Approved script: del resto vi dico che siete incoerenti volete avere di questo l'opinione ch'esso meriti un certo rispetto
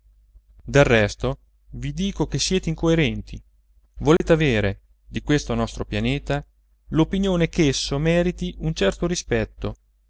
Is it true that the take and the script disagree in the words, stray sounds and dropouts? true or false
true